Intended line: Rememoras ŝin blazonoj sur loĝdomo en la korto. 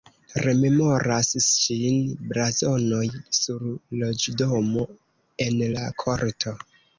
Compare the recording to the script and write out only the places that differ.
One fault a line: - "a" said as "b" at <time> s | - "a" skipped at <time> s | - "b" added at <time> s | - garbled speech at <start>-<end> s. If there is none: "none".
none